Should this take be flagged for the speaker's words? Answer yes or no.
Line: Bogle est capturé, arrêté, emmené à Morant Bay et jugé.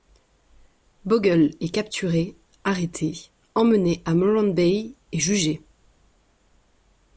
no